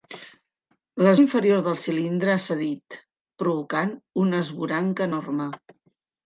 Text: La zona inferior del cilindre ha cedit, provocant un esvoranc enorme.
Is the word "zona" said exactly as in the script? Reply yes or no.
no